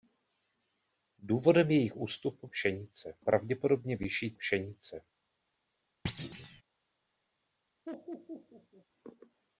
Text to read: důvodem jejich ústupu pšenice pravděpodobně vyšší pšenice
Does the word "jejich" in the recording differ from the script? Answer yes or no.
no